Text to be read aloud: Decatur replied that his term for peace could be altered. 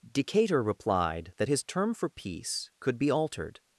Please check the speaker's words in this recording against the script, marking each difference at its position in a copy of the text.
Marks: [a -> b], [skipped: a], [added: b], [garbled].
Decatur replied that his term for peace could be altered.